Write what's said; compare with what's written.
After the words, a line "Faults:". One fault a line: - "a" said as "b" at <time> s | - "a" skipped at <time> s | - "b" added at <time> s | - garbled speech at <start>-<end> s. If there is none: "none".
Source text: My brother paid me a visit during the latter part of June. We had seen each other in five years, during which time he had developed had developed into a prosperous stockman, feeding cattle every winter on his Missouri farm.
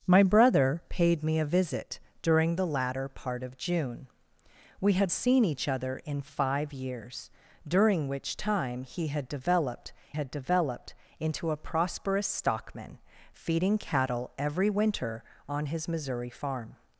My brother paid me a visit during the latter part of June. We had seen each other in five years, during which time he had developed had developed into a prosperous stockman, feeding cattle every winter on his Missouri farm.
Faults:
none